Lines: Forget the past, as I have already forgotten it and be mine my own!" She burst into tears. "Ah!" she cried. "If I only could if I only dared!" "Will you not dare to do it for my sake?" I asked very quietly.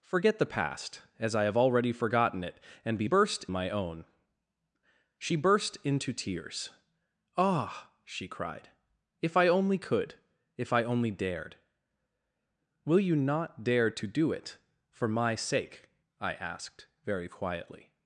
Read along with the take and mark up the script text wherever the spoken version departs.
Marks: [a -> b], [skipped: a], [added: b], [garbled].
Forget the past, as I have already forgotten it and be [mine -> burst] my own!" She burst into tears. "Ah!" she cried. "If I only could if I only dared!" "Will you not dare to do it for my sake?" I asked very quietly.